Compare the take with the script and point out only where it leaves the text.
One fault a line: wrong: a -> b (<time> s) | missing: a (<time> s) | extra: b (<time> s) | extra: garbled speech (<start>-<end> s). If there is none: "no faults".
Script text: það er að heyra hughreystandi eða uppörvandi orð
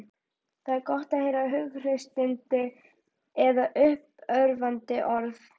extra: gott (0.9 s)